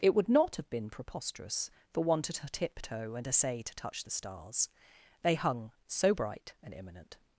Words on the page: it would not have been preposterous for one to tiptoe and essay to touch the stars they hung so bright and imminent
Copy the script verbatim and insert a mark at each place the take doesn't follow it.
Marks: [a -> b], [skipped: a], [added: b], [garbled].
it would not have been preposterous for one to tiptoe and essay to touch the stars they hung so bright and imminent